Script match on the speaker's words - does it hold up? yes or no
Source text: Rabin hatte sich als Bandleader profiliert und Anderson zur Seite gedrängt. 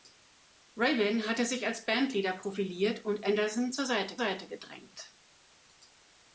no